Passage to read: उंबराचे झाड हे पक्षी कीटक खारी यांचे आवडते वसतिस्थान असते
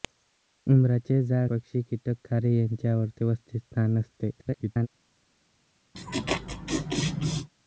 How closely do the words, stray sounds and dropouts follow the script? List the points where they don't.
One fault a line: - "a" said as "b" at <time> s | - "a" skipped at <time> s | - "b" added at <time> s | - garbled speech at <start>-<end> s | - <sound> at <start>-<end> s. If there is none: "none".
- "हे" skipped at 1.5 s
- garbled speech at 4.4-4.9 s
- laugh at 5.9-7.5 s